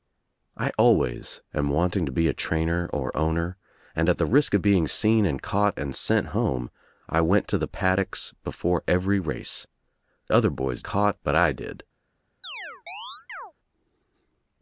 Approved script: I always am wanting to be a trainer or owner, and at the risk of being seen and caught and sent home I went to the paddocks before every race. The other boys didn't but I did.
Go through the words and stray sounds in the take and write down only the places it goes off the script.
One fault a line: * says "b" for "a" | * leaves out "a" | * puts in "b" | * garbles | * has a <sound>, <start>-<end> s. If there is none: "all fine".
* leaves out "The"
* says "caught" for "didn't"
* has a chirp, 12.4-13.5 s